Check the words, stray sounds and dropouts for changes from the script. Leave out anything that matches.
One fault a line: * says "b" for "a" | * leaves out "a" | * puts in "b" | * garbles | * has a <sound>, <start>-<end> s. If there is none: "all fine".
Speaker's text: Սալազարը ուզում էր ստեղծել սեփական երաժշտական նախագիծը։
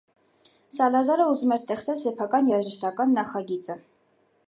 all fine